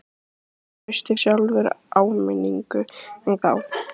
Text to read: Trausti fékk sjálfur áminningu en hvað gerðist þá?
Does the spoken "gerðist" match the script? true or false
false